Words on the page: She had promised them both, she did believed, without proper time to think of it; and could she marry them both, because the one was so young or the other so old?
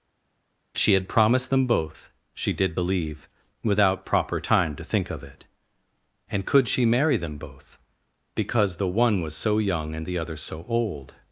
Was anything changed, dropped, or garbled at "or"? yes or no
yes